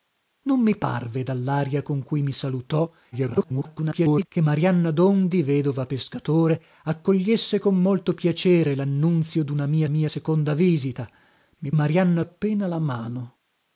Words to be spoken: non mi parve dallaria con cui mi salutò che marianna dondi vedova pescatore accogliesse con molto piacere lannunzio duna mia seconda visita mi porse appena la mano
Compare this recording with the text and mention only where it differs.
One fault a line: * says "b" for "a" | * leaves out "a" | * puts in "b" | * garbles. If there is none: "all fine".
* garbles
* puts in "mia"
* says "marianna" for "porse"